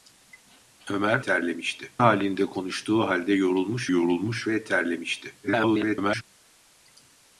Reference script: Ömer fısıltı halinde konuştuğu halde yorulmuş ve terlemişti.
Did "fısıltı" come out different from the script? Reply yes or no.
yes